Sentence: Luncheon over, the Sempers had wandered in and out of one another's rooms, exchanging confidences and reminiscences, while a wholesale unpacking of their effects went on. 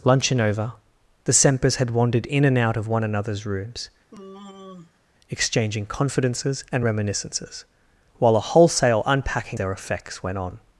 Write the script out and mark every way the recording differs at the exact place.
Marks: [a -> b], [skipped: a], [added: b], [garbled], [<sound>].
Luncheon over, the Sempers had wandered in and out of one another's rooms, [sigh] exchanging confidences and reminiscences, while a wholesale unpacking [skipped: of] their effects went on.